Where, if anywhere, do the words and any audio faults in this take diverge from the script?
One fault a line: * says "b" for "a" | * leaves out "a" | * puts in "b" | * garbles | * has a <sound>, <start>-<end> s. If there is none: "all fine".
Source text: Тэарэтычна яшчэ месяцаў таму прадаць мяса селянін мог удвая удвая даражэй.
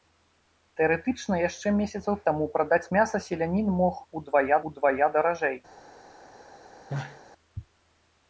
* has a sneeze, 6.9-7.2 s